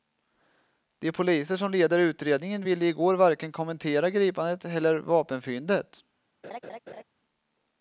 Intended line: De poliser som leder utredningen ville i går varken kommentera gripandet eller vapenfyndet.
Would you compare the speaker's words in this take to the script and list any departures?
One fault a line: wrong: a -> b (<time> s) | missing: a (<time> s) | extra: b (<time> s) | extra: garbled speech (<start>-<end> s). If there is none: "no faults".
no faults